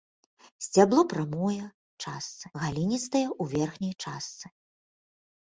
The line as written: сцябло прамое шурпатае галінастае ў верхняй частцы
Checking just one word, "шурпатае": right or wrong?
wrong